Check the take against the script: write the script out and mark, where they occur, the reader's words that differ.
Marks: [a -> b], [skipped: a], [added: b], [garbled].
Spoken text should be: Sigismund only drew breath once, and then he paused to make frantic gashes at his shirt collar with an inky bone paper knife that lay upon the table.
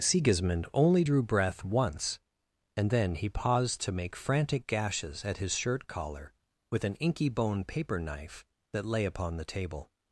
Sigismund only drew breath once, and then he paused to make frantic gashes at his shirt collar with an inky bone paper knife that lay upon the table.